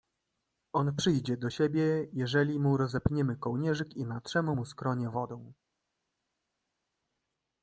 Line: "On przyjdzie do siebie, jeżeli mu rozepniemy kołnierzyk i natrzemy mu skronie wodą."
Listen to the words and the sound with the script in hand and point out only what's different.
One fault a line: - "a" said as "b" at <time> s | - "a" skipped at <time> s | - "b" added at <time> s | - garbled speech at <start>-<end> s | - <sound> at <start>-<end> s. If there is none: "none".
none